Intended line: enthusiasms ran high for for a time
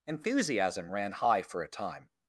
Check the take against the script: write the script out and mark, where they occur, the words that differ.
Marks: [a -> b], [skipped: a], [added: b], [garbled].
[enthusiasms -> enthusiasm] ran high for [skipped: for] a time